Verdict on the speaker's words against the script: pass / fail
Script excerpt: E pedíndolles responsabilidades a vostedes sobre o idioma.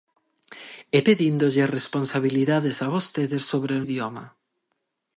pass